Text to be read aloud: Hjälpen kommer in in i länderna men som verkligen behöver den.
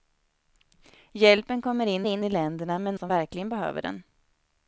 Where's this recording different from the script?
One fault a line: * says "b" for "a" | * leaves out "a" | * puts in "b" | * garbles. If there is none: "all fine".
all fine